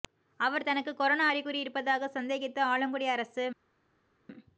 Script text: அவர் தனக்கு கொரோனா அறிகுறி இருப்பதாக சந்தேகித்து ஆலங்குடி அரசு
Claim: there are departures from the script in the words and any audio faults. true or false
false